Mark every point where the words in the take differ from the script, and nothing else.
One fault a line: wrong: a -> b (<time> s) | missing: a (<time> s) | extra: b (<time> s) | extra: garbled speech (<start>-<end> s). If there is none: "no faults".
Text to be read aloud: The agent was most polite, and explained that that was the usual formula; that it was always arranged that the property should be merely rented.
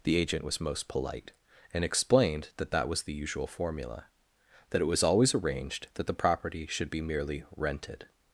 no faults